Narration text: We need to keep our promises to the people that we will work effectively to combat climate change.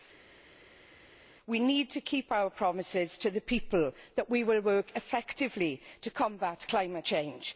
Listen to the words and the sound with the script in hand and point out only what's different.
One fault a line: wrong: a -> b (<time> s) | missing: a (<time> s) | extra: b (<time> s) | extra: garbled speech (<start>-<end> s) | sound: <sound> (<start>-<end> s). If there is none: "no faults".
no faults